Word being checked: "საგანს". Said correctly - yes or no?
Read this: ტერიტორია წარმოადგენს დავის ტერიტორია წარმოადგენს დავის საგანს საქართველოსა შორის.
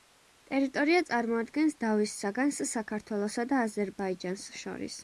no